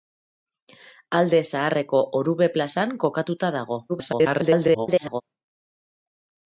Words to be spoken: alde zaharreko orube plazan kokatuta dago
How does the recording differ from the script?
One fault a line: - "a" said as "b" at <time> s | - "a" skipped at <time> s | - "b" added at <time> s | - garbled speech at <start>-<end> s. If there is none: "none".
- garbled speech at 3.9-5.2 s